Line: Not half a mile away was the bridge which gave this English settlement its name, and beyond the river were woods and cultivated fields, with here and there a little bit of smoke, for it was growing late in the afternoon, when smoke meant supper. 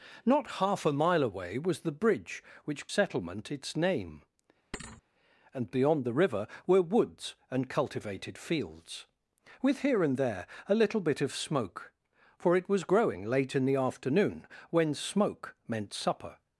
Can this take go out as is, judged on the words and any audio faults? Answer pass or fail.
fail